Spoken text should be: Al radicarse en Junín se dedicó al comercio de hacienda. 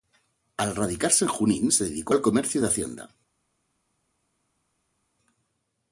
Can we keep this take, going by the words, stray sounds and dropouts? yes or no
yes